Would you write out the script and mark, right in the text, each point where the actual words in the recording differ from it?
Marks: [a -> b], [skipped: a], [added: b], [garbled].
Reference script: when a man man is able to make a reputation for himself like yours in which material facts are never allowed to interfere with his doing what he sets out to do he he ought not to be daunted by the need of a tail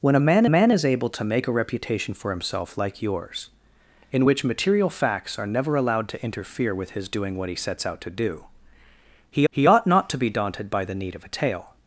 when a man man is able to make a reputation for himself like yours in which material facts are never allowed to interfere with his doing what he sets out to do he he ought not to be daunted by the need of a tail